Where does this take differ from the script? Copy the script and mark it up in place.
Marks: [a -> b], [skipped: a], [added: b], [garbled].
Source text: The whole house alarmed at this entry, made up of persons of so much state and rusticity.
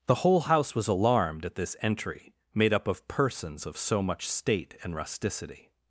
The whole house [added: was] alarmed at this entry, made up of persons of so much state and rusticity.